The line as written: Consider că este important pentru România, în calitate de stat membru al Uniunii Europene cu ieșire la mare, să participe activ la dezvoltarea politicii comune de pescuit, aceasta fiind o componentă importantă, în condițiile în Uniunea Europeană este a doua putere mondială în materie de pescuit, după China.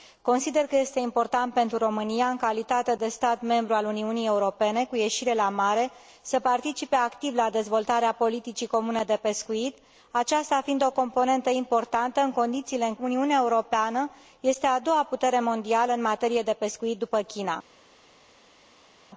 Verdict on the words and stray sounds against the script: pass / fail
pass